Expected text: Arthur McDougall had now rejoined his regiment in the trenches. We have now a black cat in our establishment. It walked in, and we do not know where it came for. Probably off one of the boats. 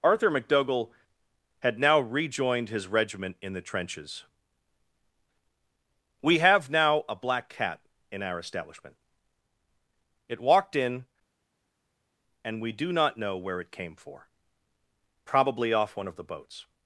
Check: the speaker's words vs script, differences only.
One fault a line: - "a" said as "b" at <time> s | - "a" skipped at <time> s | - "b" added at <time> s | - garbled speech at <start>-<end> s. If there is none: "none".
none